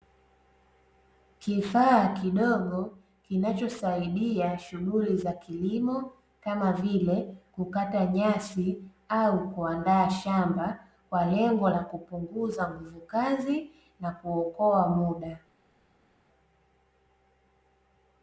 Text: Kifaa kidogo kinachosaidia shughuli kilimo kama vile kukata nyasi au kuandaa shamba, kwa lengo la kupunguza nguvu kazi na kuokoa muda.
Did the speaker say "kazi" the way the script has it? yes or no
yes